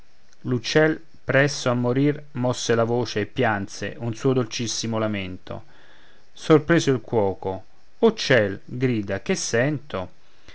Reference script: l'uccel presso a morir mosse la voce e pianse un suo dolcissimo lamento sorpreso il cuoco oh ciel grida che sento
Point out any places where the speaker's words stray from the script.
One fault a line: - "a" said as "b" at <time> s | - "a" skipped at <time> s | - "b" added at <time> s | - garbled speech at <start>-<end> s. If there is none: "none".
none